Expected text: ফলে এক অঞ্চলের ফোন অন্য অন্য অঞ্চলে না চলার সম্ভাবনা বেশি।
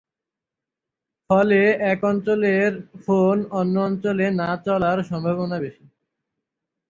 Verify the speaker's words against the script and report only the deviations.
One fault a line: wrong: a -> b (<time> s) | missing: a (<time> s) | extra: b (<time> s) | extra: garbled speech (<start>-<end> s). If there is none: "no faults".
missing: অন্য (3.7 s)